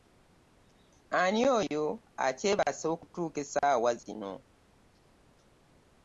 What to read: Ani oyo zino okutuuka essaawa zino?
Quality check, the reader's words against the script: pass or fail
fail